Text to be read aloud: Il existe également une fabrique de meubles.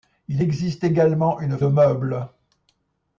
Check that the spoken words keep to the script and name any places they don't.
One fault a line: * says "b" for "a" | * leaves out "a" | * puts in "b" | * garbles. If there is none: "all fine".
* leaves out "fabrique"